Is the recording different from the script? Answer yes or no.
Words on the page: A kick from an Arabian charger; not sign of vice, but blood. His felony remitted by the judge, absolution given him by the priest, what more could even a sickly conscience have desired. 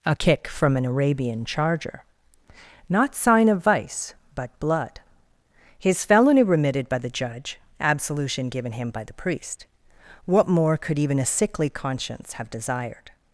no